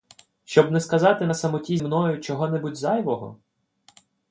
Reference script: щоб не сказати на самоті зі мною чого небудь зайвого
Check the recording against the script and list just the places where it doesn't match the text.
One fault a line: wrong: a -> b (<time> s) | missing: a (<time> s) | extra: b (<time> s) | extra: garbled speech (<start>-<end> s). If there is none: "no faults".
missing: зі (1.8 s)